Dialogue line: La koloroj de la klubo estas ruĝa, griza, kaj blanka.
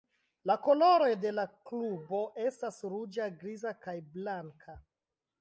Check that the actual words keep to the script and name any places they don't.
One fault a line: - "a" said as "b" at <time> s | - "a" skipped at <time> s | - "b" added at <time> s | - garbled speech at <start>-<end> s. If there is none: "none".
none